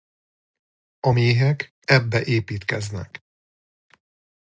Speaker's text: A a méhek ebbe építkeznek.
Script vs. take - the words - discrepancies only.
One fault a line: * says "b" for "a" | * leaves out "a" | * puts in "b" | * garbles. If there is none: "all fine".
* leaves out "a"